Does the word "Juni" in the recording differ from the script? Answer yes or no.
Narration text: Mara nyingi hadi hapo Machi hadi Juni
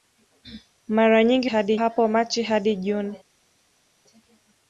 no